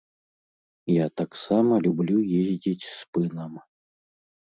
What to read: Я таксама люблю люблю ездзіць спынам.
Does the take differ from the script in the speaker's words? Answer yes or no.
yes